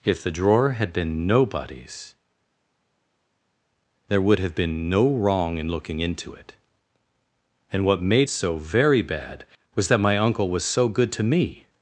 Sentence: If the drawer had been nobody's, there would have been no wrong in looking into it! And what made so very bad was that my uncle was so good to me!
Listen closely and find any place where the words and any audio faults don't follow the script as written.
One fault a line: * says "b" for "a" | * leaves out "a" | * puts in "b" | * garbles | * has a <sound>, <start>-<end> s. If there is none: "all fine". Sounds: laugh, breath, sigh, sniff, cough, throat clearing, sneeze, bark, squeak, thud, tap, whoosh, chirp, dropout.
all fine